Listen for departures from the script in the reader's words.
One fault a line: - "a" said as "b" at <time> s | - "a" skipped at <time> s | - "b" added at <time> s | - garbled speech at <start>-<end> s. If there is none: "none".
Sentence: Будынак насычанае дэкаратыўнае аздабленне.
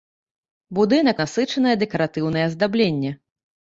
none